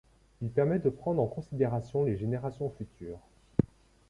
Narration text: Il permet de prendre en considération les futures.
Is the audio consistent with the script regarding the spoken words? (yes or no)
no